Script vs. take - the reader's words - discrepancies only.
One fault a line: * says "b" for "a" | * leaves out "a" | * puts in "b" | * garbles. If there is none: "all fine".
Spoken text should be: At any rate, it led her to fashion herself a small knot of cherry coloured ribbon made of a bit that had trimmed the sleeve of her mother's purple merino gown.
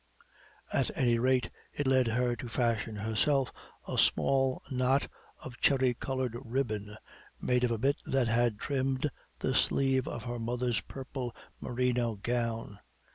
all fine